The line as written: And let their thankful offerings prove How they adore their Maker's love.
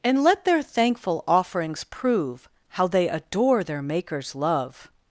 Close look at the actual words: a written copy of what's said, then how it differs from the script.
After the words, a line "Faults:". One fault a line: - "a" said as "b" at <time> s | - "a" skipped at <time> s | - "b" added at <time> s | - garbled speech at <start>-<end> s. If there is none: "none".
And let their thankful offerings prove How they adore their Maker's love.
Faults:
none